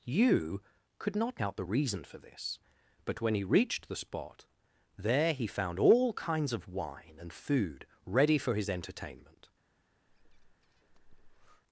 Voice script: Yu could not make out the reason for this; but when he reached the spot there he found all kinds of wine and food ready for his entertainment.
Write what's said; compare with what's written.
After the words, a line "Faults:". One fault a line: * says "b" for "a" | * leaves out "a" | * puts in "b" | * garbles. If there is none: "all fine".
Yu could not out the reason for this; but when he reached the spot there he found all kinds of wine and food ready for his entertainment.
Faults:
* leaves out "make"